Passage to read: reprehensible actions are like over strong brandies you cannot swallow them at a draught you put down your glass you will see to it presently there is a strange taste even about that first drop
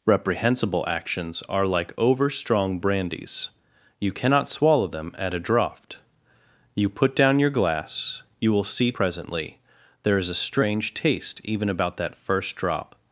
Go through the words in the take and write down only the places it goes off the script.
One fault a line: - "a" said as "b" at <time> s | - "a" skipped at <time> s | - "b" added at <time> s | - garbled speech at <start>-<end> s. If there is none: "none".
- "to it" skipped at 8.9 s